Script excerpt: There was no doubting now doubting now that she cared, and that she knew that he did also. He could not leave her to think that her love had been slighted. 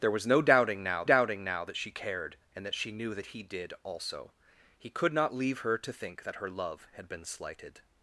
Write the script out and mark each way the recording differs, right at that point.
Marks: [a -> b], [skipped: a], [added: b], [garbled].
There was no doubting now doubting now that she cared, and that she knew that he did also. He could not leave her to think that her love had been slighted.